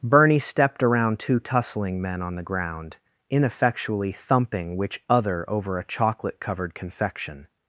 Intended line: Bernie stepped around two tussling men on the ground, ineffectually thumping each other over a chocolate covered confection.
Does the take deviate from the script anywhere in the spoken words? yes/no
yes